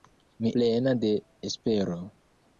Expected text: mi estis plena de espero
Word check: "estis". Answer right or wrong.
wrong